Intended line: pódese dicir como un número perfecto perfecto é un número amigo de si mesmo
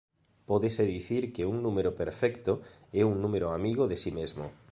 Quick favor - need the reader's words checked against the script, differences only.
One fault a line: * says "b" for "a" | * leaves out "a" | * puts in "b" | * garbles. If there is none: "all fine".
* says "que" for "como"
* leaves out "perfecto"